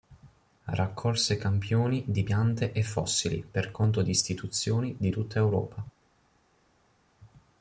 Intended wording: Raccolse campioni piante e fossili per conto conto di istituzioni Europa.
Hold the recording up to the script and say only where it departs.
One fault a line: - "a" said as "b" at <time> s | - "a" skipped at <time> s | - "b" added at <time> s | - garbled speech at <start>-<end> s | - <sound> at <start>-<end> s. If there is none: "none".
- "di" added at 2.1 s
- "conto" said as "di istituzioni" at 4.0 s
- "istituzioni" said as "tutta" at 5.1 s